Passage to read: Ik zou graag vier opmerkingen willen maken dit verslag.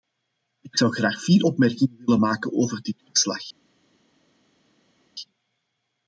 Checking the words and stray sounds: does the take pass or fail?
fail